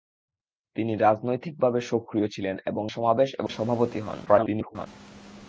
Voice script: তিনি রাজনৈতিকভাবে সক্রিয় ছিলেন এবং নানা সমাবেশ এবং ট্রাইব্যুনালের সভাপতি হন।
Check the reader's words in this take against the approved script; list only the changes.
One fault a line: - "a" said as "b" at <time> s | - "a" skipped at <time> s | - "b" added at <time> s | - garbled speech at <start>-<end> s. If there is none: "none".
- "নানা" skipped at 2.8 s
- "ট্রাইব্যুনালের" skipped at 3.5 s
- garbled speech at 4.3-4.9 s